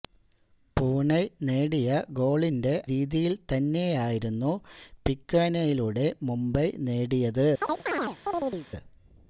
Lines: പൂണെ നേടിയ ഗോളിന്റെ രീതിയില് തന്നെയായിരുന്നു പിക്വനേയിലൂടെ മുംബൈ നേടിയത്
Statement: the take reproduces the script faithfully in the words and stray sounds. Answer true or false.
false